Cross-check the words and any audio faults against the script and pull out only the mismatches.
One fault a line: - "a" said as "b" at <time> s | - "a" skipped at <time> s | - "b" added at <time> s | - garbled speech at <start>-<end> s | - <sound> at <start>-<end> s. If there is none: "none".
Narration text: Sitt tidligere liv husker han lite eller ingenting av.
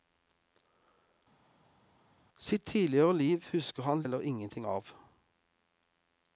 - "lite" skipped at 4.0 s